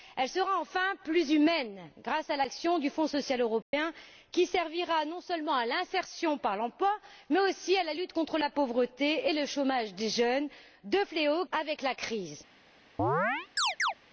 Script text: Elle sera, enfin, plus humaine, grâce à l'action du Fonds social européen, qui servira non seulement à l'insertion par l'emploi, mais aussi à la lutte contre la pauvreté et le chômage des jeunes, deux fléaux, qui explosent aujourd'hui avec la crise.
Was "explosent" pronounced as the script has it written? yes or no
no